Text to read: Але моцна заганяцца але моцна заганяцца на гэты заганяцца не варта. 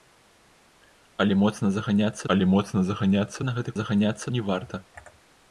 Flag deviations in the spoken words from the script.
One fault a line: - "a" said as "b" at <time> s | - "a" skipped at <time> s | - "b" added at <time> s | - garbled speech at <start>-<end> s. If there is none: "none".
none